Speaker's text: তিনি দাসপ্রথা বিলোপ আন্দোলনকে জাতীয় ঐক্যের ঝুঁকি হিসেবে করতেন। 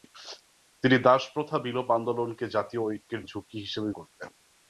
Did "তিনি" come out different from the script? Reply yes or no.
no